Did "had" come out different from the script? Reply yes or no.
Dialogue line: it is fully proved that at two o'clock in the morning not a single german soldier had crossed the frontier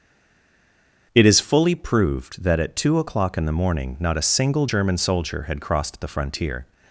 no